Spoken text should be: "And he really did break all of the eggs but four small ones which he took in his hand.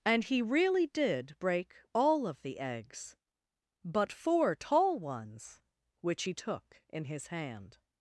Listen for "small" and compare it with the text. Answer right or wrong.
wrong